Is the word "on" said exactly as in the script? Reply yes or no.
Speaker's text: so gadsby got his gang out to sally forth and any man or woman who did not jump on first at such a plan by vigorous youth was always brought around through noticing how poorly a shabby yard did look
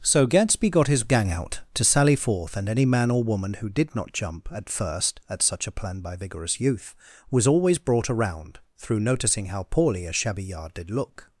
no